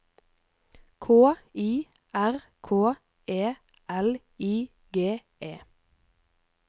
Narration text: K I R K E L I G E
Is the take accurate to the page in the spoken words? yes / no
yes